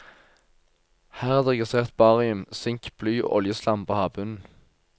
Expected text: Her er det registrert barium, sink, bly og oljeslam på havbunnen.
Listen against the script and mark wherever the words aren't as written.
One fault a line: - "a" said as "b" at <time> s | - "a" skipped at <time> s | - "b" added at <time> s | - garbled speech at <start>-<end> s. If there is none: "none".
none